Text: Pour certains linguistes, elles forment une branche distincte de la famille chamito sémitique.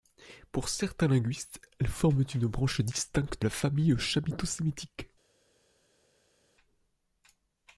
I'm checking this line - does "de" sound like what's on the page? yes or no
no